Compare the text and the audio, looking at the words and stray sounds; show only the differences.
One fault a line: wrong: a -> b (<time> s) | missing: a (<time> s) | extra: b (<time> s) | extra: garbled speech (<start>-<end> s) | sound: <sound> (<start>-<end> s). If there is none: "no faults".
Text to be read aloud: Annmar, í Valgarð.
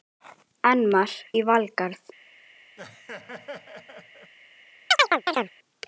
sound: laugh (2.8-4.3 s)
sound: chirp (4.9-5.5 s)